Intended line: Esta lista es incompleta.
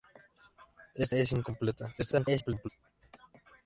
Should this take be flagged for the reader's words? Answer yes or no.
yes